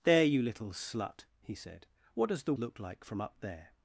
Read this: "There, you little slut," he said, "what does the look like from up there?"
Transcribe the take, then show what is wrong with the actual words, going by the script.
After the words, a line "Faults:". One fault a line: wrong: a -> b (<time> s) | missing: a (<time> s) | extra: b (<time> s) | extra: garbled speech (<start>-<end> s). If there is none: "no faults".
"There, you little slut," he said, "what does the look like from up there?"
Faults:
no faults